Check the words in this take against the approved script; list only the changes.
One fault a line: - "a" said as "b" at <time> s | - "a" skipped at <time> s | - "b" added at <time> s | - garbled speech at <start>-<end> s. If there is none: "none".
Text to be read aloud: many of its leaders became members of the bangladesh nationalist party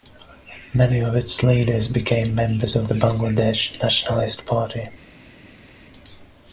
none